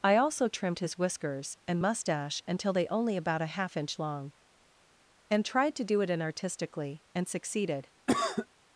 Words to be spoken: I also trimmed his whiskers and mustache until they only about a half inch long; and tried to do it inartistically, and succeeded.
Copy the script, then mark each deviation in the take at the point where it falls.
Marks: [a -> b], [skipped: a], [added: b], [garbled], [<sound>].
I also trimmed his whiskers and mustache until they only about a half inch long; and tried to do it inartistically, and succeeded. [cough]